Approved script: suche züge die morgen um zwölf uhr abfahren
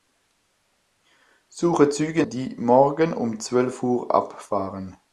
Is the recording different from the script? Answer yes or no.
no